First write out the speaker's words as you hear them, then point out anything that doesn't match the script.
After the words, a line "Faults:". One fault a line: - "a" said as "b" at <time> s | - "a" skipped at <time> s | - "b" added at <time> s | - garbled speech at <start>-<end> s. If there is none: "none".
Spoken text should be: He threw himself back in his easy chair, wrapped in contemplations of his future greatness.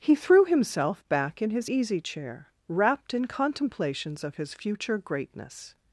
He threw himself back in his easy chair, wrapped in contemplations of his future greatness.
Faults:
none